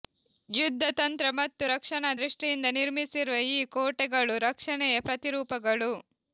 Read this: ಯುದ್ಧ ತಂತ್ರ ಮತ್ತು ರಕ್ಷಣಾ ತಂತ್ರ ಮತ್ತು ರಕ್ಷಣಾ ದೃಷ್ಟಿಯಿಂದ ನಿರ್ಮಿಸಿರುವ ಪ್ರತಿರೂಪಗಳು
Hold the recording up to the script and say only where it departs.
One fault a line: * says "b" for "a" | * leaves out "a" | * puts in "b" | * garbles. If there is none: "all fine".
* says "ದೃಷ್ಟಿಯಿಂದ ನಿರ್ಮಿಸಿರುವ ಈ ಕೋಟೆಗಳು ರಕ್ಷಣೆಯ" for "ತಂತ್ರ ಮತ್ತು ರಕ್ಷಣಾ ದೃಷ್ಟಿಯಿಂದ ನಿರ್ಮಿಸಿರುವ"